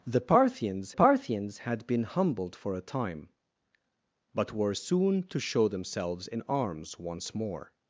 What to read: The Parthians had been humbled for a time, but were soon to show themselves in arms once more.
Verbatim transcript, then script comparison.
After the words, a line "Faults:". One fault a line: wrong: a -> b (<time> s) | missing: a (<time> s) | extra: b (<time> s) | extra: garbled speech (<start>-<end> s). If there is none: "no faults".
The Parthians Parthians had been humbled for a time, but were soon to show themselves in arms once more.
Faults:
extra: Parthians (0.9 s)